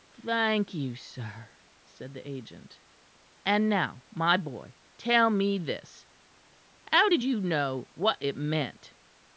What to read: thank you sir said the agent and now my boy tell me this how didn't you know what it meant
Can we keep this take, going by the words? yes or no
no